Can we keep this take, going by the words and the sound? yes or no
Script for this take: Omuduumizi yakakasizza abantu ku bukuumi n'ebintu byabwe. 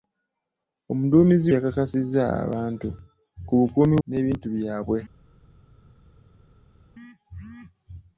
yes